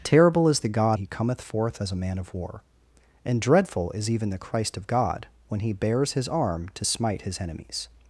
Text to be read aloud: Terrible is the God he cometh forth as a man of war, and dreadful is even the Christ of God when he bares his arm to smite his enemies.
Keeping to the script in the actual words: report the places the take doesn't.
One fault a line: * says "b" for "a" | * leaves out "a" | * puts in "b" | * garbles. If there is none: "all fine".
all fine